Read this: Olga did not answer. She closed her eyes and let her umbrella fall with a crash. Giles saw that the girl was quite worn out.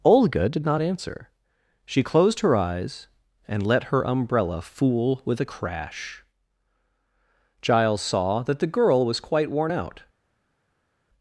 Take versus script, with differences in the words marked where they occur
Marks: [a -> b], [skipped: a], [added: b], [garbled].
Olga did not answer. She closed her eyes and let her umbrella [fall -> fool] with a crash. Giles saw that the girl was quite worn out.